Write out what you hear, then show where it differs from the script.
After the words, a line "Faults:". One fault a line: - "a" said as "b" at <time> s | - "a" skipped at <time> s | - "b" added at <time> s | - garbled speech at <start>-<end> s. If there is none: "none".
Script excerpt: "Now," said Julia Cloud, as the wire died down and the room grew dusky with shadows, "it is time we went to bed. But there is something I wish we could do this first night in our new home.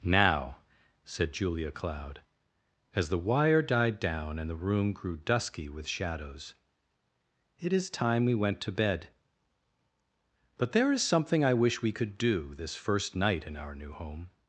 "Now," said Julia Cloud, as the wire died down and the room grew dusky with shadows, "it is time we went to bed. But there is something I wish we could do this first night in our new home.
Faults:
none